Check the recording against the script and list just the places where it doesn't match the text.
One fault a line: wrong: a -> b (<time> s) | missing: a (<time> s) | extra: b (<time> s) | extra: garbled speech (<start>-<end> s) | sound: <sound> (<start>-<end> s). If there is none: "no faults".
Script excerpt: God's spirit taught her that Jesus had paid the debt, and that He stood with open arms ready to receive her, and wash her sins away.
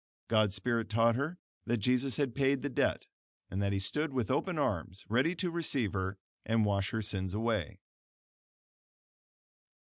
no faults